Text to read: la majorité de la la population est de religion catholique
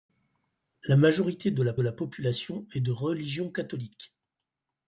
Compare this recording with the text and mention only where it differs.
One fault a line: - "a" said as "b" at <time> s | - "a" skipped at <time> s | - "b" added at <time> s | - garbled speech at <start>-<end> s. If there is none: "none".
none